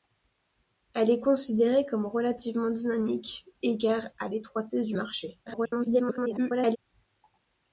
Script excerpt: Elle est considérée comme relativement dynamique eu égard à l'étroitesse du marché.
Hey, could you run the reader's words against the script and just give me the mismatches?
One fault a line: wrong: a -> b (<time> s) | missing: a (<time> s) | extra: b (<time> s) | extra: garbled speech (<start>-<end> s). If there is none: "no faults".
missing: eu (3.5 s)
extra: garbled speech (5.5-6.8 s)